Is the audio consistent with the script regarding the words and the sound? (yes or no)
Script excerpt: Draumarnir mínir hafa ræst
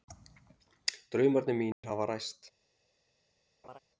no